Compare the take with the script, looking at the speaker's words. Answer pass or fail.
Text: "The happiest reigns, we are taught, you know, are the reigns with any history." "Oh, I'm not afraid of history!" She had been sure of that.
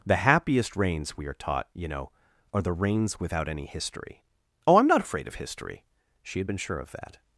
fail